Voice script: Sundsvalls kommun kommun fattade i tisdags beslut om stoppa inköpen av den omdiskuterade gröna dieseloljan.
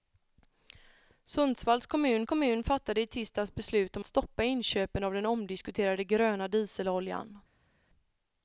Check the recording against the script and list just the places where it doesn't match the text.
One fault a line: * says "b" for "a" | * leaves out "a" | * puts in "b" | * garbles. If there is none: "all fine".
all fine